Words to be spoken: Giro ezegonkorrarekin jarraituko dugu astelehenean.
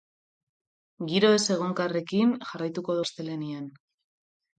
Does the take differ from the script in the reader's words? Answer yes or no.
yes